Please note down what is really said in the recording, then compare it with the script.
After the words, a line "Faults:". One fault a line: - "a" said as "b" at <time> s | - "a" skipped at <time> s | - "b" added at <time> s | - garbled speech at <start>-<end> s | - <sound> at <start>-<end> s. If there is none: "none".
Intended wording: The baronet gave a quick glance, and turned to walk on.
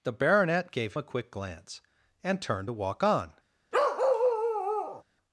The baronet gave a quick glance, and turned to walk on.
Faults:
- bark at 3.7-5.0 s